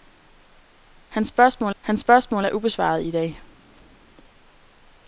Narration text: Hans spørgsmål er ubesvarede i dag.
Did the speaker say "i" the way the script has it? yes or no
yes